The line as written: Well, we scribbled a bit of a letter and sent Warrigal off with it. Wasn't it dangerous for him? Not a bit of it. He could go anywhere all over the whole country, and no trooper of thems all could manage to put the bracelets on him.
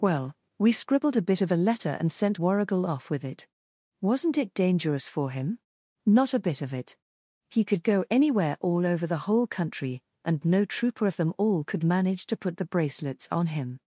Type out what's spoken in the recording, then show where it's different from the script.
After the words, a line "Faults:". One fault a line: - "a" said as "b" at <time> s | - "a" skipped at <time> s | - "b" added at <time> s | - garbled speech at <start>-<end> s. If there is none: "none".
Well, we scribbled a bit of a letter and sent Warrigal off with it. Wasn't it dangerous for him? Not a bit of it. He could go anywhere all over the whole country, and no trooper of them all could manage to put the bracelets on him.
Faults:
- "thems" said as "them" at 11.2 s